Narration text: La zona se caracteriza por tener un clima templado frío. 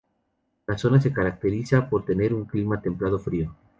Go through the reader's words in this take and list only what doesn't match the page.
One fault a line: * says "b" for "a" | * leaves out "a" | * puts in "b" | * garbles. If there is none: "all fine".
all fine